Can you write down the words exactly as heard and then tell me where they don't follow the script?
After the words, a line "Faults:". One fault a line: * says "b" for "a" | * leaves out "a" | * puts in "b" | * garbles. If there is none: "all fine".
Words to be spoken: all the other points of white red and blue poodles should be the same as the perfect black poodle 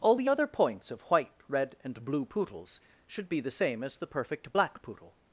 all the other points of white red and blue poodles should be the same as the perfect black poodle
Faults:
all fine